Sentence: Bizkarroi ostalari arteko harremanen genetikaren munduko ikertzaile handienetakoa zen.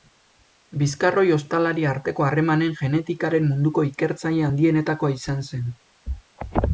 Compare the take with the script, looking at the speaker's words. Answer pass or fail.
fail